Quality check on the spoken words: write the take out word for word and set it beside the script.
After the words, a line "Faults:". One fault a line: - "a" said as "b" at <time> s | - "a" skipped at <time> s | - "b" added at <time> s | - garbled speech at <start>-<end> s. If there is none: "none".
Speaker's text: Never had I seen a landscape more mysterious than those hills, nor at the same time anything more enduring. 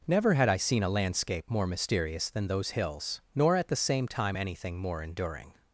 Never had I seen a landscape more mysterious than those hills, nor at the same time anything more enduring.
Faults:
none